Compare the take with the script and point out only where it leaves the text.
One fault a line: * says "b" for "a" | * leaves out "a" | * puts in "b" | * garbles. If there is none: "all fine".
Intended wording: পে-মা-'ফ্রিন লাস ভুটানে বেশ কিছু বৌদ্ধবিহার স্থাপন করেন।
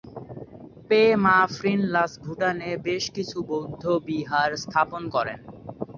all fine